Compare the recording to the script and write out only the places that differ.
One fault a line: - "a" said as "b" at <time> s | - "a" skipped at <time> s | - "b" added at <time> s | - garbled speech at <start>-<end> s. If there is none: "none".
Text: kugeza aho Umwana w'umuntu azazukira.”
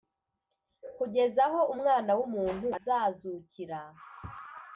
none